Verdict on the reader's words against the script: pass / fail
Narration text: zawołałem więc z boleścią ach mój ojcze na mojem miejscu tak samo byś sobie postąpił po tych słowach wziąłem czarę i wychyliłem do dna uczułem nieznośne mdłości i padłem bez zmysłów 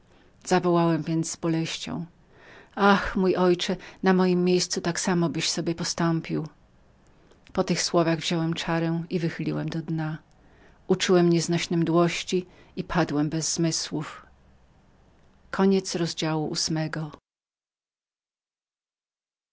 pass